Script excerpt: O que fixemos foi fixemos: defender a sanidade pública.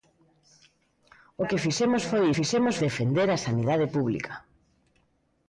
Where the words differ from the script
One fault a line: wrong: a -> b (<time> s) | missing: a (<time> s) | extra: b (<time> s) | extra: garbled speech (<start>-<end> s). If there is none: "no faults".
no faults